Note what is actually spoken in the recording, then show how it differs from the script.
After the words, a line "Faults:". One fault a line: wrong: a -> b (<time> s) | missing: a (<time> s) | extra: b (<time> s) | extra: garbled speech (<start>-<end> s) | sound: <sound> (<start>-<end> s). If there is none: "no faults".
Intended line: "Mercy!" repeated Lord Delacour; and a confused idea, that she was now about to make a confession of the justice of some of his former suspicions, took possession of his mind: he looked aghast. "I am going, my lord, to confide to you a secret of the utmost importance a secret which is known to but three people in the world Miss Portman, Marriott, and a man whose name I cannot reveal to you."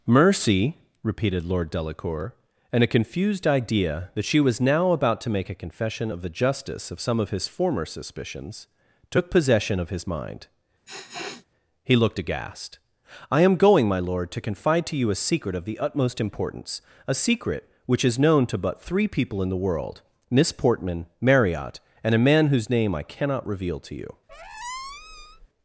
"Mercy!" repeated Lord Delacour; and a confused idea, that she was now about to make a confession of the justice of some of his former suspicions, took possession of his mind: he looked aghast. "I am going, my lord, to confide to you a secret of the utmost importance a secret which is known to but three people in the world Miss Portman, Marriott, and a man whose name I cannot reveal to you."
Faults:
sound: sniff (10.9-11.5 s)
sound: squeak (24.3-25.5 s)